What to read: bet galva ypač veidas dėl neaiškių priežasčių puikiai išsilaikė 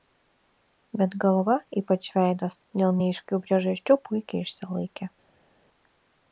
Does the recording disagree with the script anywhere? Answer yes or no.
no